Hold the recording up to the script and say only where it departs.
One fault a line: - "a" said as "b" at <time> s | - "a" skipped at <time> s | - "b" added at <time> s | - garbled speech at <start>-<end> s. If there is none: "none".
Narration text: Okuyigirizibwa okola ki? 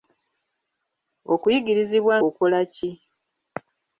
none